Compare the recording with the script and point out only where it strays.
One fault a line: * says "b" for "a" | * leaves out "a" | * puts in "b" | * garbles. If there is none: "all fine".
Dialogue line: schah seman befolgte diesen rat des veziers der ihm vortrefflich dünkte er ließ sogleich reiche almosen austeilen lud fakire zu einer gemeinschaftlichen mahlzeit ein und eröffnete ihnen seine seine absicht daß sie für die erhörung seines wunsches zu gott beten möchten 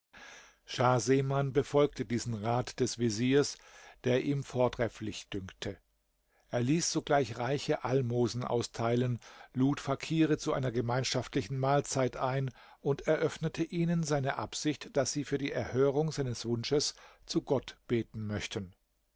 * leaves out "seine"